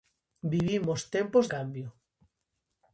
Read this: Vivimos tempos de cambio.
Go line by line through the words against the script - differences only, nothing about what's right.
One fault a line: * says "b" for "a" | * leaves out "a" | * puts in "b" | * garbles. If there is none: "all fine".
* leaves out "de"